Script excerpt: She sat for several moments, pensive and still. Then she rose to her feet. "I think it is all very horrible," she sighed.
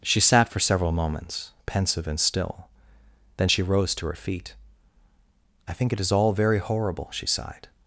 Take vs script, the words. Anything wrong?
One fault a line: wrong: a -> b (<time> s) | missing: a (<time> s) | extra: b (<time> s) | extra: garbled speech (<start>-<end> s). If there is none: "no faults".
no faults